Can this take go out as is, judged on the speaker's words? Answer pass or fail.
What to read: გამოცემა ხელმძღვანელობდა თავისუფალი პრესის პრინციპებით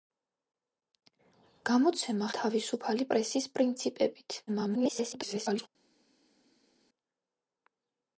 fail